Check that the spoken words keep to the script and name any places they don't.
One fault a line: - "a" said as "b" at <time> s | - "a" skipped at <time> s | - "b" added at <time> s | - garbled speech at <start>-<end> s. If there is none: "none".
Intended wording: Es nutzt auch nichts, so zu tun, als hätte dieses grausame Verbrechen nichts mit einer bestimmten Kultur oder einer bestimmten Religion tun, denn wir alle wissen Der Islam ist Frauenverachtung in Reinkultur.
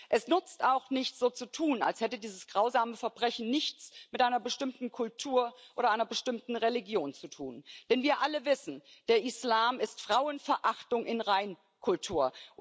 - "zu" added at 7.1 s